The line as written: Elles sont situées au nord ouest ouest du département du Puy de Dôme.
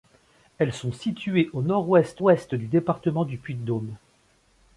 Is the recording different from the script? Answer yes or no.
no